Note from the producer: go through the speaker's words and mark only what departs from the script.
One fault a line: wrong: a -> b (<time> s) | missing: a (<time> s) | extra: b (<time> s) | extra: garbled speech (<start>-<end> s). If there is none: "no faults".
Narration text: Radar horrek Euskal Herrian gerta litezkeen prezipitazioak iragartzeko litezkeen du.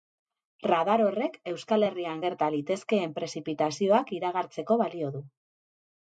wrong: litezkeen -> balio (4.8 s)